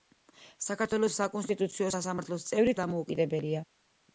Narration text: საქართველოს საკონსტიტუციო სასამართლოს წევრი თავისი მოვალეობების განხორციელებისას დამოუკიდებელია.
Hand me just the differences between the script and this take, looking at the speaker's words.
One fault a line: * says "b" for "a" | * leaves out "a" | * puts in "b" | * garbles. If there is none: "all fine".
* leaves out "თავისი მოვალეობების განხორციელებისას"